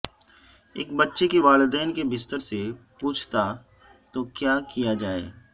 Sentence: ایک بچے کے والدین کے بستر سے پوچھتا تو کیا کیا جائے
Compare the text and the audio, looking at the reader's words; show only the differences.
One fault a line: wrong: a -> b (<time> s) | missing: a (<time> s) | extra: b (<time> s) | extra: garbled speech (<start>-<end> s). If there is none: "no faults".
no faults